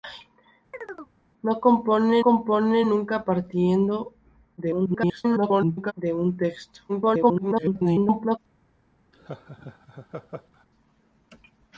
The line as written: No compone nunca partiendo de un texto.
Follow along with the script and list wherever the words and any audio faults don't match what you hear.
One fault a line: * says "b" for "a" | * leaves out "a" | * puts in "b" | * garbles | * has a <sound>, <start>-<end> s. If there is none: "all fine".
* has a chirp, 0.7-1.1 s
* puts in "compone"
* garbles
* garbles
* has a laugh, 9.1-10.7 s